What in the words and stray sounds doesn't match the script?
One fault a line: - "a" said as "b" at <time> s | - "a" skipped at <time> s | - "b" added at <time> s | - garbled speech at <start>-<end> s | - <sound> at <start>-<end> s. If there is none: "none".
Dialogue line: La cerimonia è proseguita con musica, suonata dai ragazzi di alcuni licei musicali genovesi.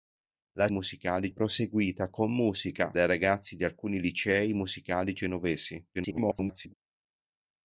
- "cerimonia" said as "musicali" at 0.7 s
- "suonata" skipped at 2.9 s
- garbled speech at 5.9-6.7 s